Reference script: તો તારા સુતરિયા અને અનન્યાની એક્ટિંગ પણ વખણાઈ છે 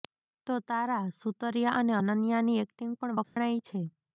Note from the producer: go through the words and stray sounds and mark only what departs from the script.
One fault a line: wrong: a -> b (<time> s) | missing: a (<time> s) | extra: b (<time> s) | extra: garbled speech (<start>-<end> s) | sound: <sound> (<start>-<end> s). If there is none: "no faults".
sound: dropout (3.2-3.4 s)